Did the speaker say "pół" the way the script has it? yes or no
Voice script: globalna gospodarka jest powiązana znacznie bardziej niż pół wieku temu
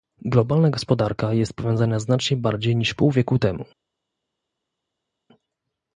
yes